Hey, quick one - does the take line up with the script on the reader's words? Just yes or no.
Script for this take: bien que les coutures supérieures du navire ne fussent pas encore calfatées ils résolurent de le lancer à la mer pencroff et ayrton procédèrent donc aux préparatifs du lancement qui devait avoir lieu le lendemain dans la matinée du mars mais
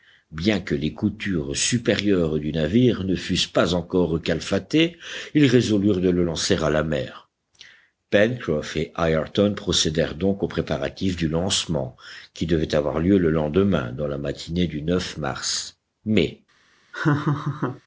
yes